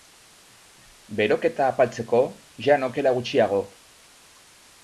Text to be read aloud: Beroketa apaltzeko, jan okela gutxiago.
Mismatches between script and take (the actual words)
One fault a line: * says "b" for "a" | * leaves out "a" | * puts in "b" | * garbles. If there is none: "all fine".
all fine